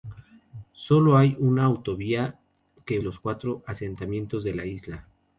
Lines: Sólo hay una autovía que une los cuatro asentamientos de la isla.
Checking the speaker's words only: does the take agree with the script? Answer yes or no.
no